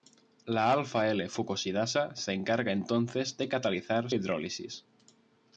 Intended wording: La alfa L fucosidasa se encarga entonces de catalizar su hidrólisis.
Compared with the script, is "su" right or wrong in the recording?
wrong